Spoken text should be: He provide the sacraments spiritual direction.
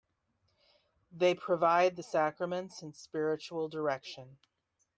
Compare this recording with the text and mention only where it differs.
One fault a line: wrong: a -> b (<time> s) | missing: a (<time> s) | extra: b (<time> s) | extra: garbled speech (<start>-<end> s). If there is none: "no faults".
wrong: He -> They (1.1 s)
extra: and (2.8 s)